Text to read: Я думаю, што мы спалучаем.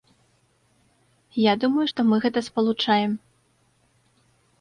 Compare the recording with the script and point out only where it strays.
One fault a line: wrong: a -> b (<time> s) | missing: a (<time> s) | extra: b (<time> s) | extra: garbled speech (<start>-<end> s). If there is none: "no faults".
extra: гэта (2.2 s)